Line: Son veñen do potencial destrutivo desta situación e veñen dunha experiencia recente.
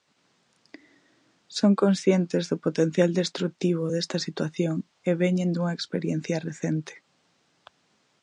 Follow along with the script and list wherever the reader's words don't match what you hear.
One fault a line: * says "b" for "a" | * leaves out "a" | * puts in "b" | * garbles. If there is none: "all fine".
* says "conscientes" for "veñen"